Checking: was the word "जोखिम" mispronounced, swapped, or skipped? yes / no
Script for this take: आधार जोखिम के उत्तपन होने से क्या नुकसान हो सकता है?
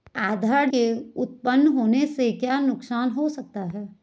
yes